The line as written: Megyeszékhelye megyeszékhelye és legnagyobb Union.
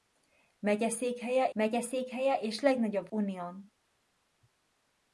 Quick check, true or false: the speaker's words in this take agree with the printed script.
true